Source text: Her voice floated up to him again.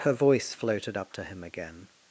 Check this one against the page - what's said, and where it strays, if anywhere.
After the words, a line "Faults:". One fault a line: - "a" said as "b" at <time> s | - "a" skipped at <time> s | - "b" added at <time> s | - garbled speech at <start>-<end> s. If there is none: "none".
Her voice floated up to him again.
Faults:
none